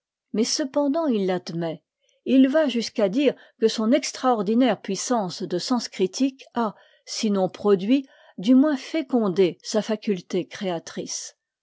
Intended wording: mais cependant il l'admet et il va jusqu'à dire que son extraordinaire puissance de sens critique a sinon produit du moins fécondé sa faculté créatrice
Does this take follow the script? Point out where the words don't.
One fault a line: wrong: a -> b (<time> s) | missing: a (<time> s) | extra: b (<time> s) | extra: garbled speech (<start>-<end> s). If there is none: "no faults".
no faults